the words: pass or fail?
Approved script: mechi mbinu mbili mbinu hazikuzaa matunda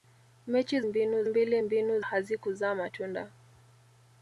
pass